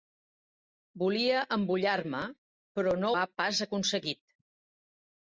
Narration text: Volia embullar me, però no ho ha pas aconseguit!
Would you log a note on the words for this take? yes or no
yes